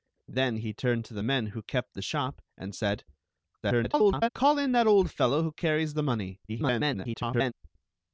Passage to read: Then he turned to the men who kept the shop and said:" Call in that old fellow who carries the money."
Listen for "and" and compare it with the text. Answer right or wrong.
right